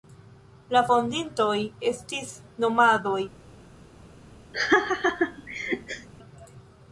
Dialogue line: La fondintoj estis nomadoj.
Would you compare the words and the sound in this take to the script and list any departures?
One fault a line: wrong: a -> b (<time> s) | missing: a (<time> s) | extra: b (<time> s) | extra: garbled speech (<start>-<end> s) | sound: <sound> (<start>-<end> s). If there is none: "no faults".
sound: laugh (4.5-6.1 s)